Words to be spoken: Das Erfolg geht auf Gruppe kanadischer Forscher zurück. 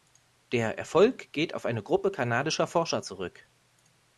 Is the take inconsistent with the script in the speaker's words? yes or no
yes